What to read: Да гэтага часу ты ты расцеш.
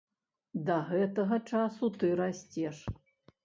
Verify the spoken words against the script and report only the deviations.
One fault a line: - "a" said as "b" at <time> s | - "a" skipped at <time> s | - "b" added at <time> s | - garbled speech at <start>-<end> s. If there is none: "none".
- "ты" skipped at 2.1 s